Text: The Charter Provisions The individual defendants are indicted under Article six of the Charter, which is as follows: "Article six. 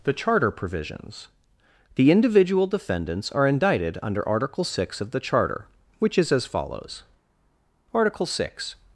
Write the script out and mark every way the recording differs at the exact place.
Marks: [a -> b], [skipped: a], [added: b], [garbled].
The Charter Provisions The individual defendants are indicted under Article six of the Charter, which is as follows: "Article six.